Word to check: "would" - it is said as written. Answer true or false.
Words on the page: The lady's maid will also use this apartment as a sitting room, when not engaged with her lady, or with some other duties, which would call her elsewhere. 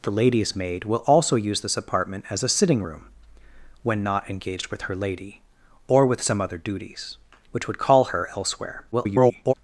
true